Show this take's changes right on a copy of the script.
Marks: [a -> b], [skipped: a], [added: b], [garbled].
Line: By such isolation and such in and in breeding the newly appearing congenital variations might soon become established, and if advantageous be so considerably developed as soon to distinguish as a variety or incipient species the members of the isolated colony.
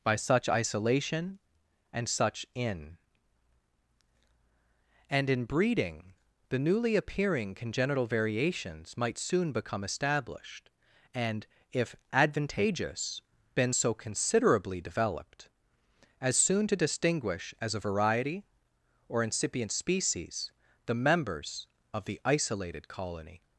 By such isolation and such in and in breeding the newly appearing congenital variations might soon become established, and if advantageous [be -> been] so considerably developed as soon to distinguish as a variety or incipient species the members of the isolated colony.